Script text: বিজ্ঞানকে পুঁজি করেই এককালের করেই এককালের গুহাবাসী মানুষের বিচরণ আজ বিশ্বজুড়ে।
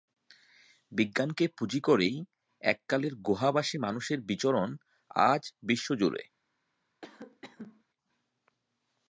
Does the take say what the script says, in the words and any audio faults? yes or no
no